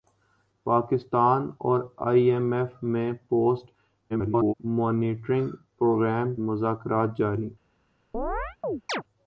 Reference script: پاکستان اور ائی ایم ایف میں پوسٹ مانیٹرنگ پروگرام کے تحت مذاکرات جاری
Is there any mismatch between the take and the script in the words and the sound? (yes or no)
yes